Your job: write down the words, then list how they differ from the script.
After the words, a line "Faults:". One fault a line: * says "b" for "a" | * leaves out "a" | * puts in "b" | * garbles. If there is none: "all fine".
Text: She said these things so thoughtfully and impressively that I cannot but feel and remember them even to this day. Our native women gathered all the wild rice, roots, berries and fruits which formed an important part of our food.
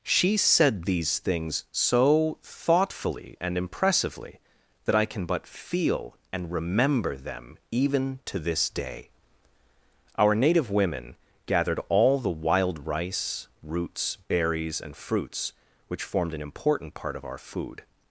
She said these things so thoughtfully and impressively that I can but feel and remember them even to this day. Our native women gathered all the wild rice, roots, berries and fruits which formed an important part of our food.
Faults:
* says "can" for "cannot"